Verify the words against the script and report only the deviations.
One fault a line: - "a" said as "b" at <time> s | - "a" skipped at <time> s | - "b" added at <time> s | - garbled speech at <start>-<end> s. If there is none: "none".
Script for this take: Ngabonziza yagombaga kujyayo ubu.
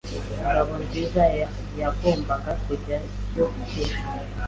- "ubu" said as "ejo" at 3.8 s